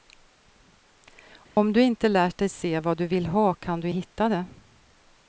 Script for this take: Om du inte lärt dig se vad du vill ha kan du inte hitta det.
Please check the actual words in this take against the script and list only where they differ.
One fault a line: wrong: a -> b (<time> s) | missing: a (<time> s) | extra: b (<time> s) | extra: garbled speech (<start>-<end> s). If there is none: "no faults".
missing: inte (3.9 s)